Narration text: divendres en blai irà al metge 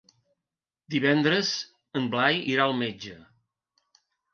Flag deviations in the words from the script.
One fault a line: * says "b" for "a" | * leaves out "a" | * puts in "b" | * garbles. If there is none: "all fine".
all fine